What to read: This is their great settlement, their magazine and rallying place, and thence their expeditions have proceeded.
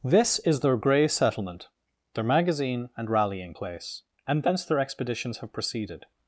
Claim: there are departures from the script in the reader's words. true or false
true